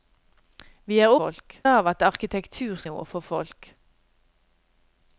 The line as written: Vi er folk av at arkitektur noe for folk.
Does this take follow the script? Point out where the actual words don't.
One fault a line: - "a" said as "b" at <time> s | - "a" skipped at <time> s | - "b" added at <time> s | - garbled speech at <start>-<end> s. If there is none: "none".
none